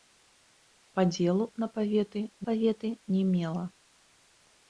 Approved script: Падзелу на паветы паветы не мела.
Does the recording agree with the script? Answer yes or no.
yes